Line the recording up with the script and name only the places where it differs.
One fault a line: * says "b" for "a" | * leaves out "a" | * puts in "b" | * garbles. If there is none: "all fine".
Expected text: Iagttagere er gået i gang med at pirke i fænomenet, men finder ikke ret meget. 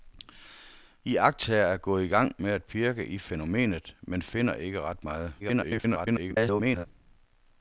* garbles